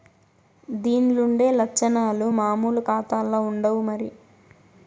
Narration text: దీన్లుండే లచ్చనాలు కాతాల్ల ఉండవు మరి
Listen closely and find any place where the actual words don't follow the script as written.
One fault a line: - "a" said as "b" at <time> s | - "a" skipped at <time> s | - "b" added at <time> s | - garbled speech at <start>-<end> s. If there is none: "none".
- "మామూలు" added at 2.4 s